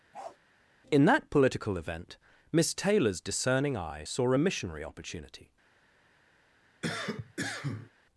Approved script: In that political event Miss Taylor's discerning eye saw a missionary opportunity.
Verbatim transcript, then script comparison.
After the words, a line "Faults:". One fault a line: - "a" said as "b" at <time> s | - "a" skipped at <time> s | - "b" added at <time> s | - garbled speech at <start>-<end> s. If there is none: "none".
In that political event Miss Taylor's discerning eye saw a missionary opportunity.
Faults:
none